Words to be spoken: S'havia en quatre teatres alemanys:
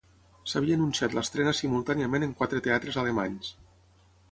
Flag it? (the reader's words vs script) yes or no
yes